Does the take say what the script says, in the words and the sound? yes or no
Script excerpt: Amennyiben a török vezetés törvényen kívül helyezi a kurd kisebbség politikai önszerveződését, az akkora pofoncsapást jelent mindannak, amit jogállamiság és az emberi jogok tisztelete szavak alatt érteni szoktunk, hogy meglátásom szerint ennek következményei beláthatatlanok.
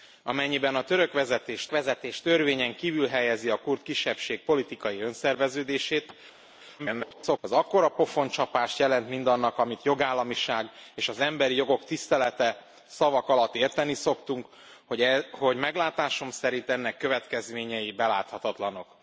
no